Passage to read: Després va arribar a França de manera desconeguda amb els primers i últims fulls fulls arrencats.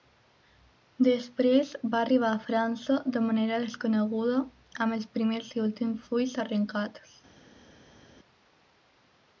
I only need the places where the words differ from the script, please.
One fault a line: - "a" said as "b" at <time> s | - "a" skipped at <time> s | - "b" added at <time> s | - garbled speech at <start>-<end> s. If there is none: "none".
- "fulls" skipped at 6.4 s